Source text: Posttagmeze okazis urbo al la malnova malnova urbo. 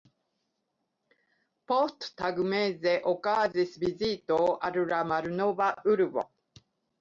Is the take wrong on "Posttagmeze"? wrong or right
right